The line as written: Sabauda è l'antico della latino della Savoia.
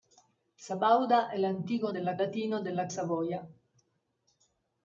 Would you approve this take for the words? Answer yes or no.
yes